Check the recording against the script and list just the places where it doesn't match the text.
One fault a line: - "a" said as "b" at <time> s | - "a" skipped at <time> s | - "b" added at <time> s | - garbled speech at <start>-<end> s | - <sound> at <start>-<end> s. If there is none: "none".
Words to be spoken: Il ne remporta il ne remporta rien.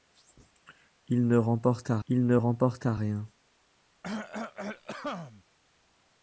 - cough at 4.0-5.4 s